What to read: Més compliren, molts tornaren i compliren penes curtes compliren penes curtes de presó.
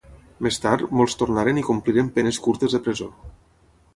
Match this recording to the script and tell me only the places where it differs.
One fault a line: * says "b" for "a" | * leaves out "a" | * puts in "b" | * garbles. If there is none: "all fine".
* says "tard" for "compliren"
* leaves out "compliren penes curtes"